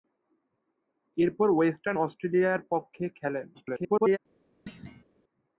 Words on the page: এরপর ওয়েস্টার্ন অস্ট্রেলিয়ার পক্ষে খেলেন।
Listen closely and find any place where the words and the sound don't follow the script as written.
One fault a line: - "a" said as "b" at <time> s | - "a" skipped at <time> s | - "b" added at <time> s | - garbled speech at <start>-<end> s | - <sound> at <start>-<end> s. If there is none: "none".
- garbled speech at 3.5-4.2 s
- thud at 4.7-5.0 s